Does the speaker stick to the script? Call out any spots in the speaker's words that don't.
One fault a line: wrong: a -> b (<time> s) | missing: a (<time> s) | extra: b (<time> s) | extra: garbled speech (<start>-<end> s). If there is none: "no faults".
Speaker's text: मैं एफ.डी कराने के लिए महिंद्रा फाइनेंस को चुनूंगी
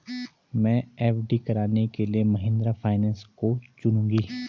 no faults